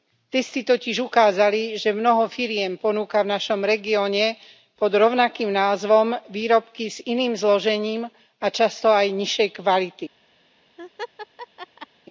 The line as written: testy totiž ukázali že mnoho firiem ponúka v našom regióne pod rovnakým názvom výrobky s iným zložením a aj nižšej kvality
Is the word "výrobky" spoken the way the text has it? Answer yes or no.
yes